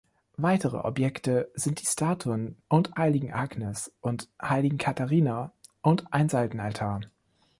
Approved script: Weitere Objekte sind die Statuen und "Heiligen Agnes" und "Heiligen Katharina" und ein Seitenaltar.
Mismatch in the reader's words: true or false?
false